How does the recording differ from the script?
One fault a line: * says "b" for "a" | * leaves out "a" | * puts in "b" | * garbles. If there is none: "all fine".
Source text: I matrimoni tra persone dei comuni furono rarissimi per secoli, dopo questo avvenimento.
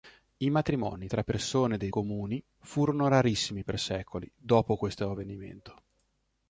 all fine